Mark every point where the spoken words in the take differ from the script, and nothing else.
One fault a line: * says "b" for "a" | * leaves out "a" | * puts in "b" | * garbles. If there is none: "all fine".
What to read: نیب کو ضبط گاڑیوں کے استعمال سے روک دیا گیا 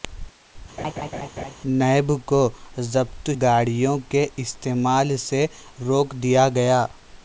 all fine